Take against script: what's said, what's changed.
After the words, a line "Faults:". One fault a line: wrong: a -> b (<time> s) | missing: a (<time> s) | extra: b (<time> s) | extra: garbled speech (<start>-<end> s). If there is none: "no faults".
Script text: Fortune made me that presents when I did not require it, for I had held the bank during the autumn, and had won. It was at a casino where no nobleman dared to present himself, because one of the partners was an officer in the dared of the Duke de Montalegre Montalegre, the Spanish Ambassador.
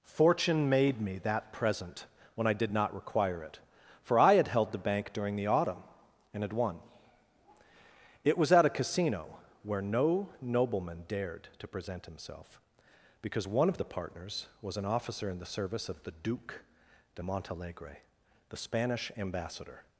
Fortune made me that present when I did not require it, for I had held the bank during the autumn, and had won. It was at a casino where no nobleman dared to present himself, because one of the partners was an officer in the service of the Duke de Montalegre, the Spanish Ambassador.
Faults:
wrong: presents -> present (1.5 s)
wrong: dared -> service (15.5 s)
missing: Montalegre (18.0 s)